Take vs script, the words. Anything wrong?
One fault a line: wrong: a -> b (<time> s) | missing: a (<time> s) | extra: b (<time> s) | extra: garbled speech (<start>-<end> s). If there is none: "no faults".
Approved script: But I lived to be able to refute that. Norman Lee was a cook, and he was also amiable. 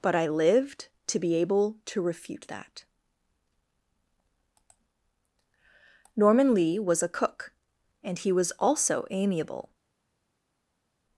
no faults